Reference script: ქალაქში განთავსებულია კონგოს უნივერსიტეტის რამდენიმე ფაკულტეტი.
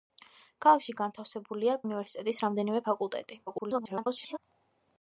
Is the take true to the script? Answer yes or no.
no